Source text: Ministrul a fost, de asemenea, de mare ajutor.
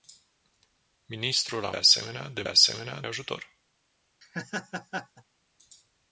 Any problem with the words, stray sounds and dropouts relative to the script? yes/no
yes